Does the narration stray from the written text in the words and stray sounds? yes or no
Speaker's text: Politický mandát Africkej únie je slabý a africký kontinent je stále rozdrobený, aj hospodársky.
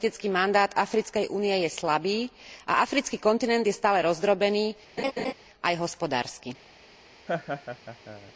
yes